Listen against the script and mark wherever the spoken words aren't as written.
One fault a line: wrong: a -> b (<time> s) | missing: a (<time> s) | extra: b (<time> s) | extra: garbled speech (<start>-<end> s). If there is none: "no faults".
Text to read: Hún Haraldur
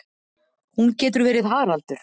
extra: getur verið (1.0 s)